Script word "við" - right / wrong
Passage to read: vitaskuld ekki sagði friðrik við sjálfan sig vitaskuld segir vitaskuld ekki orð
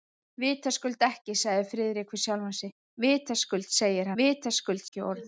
right